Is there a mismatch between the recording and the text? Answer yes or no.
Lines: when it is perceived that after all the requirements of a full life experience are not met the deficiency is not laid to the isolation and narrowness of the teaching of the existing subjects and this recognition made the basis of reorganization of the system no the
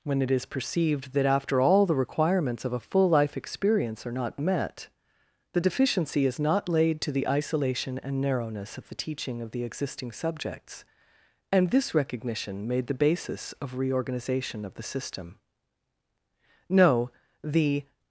no